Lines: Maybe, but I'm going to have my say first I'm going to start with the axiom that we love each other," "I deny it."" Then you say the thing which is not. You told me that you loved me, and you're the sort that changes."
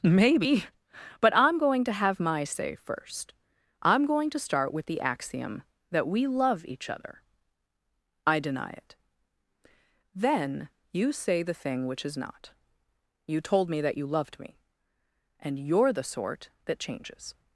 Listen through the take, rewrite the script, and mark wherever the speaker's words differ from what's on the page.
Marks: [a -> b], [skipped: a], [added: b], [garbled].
Maybe, but I'm going to have my say first I'm going to start with the axiom that we love each other," "I deny it."" Then you say the thing which is not. You told me that you loved me, and you're the sort that changes."